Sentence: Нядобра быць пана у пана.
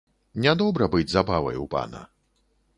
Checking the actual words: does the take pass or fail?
fail